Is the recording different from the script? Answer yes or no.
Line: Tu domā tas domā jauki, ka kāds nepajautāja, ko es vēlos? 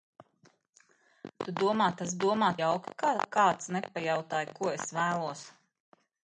no